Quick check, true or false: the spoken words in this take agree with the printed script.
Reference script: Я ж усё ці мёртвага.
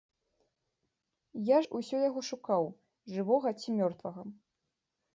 false